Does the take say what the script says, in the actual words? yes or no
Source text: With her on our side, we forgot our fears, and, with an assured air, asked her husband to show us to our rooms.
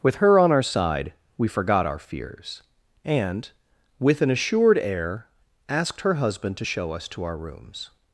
yes